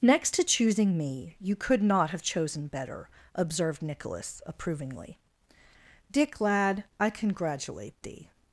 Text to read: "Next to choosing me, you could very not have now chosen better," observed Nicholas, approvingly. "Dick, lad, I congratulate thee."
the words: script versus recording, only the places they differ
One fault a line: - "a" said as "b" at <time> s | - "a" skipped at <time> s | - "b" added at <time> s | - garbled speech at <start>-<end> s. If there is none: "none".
- "very" skipped at 1.8 s
- "now" skipped at 2.2 s